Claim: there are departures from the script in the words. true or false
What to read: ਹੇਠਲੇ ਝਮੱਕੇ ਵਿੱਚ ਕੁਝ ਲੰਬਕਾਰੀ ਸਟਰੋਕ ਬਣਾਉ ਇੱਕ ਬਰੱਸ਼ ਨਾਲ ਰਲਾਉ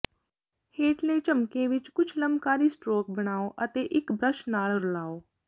true